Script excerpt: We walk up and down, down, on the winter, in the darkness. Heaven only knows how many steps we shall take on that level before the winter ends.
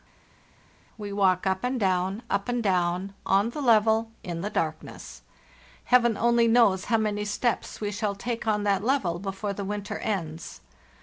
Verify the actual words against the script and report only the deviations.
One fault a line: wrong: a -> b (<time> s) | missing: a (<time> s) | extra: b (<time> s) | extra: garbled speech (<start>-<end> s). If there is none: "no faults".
extra: up and (2.3 s)
wrong: winter -> level (3.6 s)